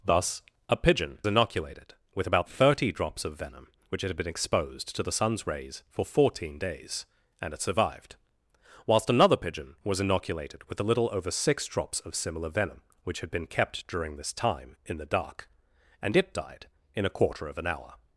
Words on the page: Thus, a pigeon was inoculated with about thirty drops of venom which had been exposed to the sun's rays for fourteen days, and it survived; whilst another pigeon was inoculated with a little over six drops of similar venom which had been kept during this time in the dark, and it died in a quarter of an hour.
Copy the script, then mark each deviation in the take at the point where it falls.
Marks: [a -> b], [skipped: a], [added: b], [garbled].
Thus, a pigeon [skipped: was] inoculated with about thirty drops of venom which had been exposed to the sun's rays for fourteen days, and it survived; whilst another pigeon was inoculated with a little over six drops of similar venom which had been kept during this time in the dark, and it died in a quarter of an hour.